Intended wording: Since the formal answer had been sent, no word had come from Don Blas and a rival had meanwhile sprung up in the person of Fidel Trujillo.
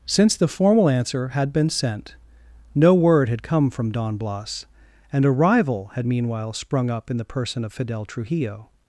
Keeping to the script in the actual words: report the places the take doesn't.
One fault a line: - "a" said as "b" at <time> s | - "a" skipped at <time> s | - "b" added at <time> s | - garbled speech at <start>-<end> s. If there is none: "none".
none